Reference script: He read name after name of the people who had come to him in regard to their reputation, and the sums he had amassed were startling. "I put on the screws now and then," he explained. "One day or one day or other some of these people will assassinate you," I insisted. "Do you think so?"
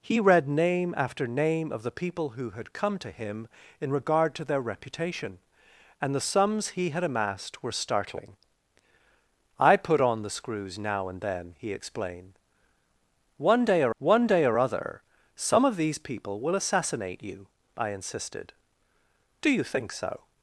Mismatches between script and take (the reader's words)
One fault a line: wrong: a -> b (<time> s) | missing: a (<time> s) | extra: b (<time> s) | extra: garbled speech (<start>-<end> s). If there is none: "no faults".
no faults